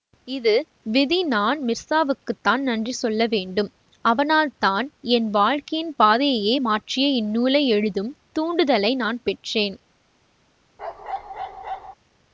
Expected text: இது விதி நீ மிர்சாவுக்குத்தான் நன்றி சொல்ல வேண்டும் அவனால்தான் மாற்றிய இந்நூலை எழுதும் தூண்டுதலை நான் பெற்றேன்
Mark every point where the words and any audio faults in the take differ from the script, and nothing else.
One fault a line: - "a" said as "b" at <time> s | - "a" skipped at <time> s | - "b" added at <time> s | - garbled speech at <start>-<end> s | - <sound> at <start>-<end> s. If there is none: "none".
- "நீ" said as "நான்" at 1.2 s
- "என் வாழ்க்கையின் பாதையையே" added at 5.1 s
- bark at 10.8-11.9 s